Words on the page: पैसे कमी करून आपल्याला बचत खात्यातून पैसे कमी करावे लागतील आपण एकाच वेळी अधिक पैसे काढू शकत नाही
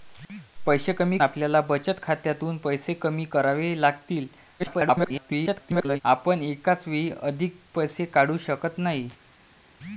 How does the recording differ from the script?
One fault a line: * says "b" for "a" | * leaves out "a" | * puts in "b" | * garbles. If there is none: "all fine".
* leaves out "करून"
* garbles